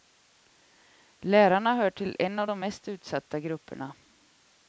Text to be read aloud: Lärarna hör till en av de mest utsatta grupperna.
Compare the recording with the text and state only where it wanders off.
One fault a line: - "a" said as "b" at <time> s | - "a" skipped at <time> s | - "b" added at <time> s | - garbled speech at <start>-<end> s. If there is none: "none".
none